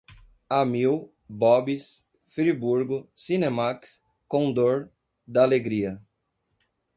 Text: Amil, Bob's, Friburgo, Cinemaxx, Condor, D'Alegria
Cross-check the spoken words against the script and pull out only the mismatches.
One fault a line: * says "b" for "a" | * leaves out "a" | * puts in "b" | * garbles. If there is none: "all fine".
all fine